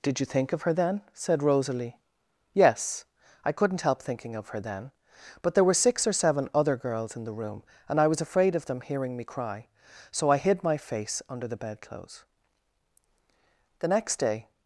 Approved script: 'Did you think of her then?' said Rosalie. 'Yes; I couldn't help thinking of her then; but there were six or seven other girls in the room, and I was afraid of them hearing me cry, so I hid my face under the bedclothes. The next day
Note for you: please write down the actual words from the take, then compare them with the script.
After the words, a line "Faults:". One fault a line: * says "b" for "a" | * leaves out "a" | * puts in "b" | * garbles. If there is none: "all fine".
'Did you think of her then?' said Rosalie. 'Yes; I couldn't help thinking of her then; but there were six or seven other girls in the room, and I was afraid of them hearing me cry, so I hid my face under the bedclothes. The next day
Faults:
all fine